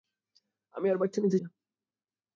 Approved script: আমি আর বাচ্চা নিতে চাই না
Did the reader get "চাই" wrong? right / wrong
wrong